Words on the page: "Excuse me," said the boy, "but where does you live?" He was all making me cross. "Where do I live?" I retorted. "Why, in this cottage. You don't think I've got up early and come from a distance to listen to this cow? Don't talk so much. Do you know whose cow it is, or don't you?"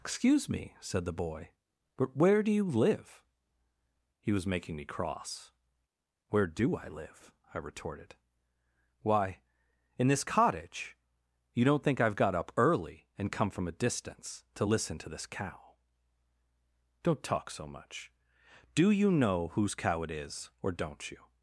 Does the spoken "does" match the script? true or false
false